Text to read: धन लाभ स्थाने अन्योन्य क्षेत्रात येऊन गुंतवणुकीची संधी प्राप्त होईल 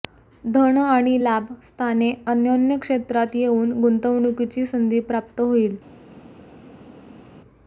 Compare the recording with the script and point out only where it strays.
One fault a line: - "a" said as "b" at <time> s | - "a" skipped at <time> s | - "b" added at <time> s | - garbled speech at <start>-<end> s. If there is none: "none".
- "आणि" added at 0.8 s